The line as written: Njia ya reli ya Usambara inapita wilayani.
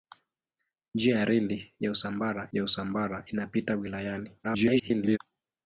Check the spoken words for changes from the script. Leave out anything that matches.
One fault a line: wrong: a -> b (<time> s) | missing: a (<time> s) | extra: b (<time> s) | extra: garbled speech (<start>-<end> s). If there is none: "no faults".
extra: ya Usambara (2.5 s)
extra: garbled speech (4.4-5.2 s)